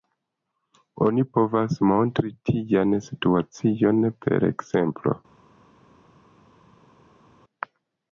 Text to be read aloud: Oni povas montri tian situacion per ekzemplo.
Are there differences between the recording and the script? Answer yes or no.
no